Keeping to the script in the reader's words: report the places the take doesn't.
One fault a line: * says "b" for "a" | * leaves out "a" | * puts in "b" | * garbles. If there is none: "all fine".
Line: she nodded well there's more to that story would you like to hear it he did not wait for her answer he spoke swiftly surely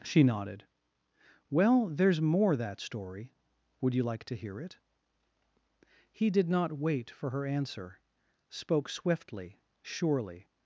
* leaves out "to"
* leaves out "he"